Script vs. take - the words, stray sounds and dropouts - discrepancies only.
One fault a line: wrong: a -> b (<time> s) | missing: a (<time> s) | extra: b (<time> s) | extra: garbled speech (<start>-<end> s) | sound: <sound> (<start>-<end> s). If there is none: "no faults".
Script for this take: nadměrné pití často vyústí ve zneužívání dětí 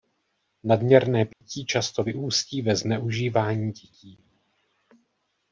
sound: dropout (1.3-1.4 s)